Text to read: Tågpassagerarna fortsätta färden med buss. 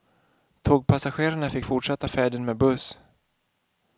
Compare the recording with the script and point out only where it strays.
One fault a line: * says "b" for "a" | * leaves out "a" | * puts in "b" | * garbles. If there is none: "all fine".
* puts in "fick"